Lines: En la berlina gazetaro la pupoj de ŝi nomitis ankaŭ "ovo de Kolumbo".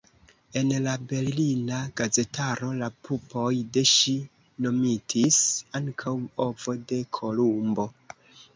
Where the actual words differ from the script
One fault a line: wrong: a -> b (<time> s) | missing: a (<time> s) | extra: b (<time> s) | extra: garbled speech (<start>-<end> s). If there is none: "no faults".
no faults